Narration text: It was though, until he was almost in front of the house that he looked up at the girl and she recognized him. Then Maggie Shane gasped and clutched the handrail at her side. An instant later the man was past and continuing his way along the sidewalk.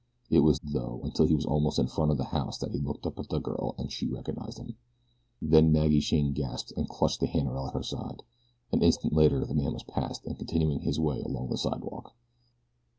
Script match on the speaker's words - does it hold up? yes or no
yes